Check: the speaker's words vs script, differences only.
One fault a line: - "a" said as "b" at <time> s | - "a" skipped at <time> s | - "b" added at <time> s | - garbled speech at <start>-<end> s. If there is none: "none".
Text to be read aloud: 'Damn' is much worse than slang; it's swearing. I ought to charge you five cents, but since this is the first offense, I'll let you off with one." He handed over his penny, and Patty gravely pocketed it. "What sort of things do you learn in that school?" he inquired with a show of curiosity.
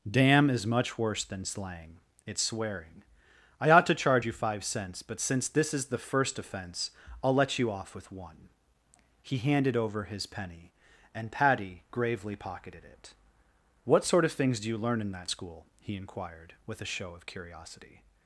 none